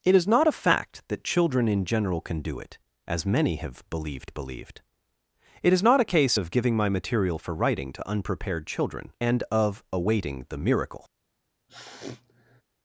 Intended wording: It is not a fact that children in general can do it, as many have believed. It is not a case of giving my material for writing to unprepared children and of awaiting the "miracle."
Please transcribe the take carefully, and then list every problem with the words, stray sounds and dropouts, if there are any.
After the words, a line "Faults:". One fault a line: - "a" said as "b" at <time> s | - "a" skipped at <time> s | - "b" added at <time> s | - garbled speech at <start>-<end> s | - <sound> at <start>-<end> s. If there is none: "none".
It is not a fact that children in general can do it, as many have believed believed. It is not a case of giving my material for writing to unprepared children and of awaiting the "miracle."
Faults:
- "believed" added at 4.3 s
- sniff at 11.7-12.6 s